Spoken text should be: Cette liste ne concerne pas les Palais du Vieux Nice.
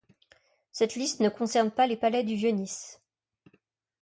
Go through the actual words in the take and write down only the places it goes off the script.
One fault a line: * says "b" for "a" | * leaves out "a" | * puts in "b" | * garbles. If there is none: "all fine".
all fine